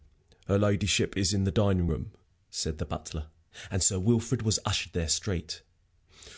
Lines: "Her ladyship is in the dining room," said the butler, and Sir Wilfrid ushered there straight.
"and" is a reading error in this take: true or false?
false